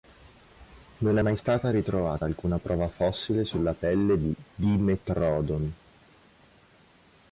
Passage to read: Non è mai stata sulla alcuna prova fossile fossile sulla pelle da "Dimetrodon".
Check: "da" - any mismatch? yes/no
yes